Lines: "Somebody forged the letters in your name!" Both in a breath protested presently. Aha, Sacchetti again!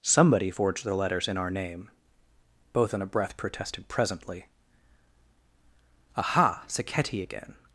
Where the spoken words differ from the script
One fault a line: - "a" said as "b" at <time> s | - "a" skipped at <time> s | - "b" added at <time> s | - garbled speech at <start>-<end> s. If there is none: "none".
- "your" said as "our" at 1.4 s